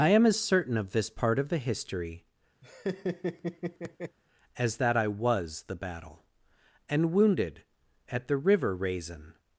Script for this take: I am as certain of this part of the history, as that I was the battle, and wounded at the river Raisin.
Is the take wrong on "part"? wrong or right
right